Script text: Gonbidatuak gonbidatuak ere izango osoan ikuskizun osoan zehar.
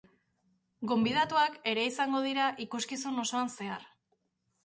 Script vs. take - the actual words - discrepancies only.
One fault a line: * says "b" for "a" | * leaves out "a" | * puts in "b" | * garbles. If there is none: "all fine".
* leaves out "gonbidatuak"
* says "dira" for "osoan"